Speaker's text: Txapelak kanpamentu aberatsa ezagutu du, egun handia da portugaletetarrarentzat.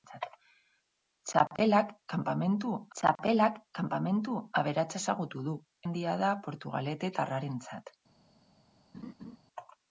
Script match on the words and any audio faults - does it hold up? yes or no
no